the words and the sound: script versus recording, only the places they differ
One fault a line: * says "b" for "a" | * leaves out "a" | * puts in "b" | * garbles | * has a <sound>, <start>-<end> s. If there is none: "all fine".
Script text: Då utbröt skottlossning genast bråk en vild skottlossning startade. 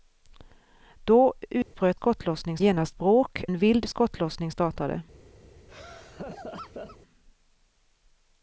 * has a dropout, 1.6-1.7 s
* has a laugh, 5.7-7.0 s